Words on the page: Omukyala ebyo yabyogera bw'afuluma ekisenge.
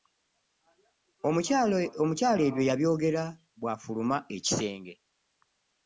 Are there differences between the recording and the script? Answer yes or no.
no